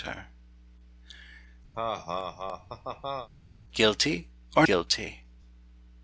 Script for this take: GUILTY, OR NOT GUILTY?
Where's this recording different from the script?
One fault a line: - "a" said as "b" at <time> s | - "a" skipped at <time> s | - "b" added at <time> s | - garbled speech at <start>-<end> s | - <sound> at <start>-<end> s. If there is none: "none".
- laugh at 1.7-3.3 s
- "NOT" skipped at 4.7 s